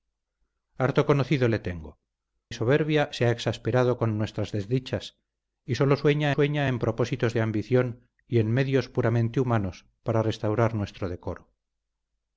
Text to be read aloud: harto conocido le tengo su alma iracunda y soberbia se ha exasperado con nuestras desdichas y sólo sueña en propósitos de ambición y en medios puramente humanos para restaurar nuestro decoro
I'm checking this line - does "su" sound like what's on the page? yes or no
no